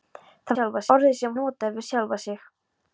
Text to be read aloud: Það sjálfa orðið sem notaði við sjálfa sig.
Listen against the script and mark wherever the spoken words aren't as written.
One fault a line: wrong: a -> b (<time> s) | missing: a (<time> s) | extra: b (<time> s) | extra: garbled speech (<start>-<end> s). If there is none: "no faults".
no faults